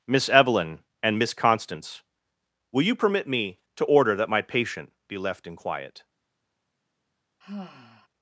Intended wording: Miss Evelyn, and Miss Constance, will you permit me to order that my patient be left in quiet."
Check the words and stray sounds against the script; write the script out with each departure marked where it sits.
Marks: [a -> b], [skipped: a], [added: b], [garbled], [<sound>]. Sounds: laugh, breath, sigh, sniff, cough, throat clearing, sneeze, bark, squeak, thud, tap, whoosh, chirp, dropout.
Miss Evelyn, and Miss Constance, will you permit me to order that my patient be left in quiet." [sigh]